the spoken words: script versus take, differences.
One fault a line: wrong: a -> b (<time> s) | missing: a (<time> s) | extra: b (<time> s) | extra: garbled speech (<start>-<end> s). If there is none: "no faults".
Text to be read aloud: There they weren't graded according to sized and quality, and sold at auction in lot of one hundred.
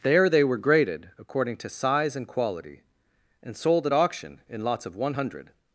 wrong: weren't -> were (0.4 s)
wrong: sized -> size (1.7 s)
wrong: lot -> lots (4.6 s)